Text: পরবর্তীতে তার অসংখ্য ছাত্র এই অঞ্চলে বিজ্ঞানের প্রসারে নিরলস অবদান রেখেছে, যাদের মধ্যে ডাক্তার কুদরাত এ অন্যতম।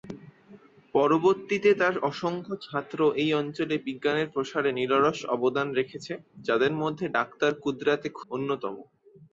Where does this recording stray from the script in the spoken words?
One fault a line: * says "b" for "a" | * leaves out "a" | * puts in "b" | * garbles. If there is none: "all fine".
all fine